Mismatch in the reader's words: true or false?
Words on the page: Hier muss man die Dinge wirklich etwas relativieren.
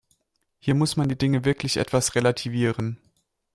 false